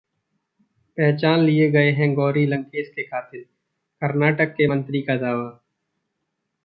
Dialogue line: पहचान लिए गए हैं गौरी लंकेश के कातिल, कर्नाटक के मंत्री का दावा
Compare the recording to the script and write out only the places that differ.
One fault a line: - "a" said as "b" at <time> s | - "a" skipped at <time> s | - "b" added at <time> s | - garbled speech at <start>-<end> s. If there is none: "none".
none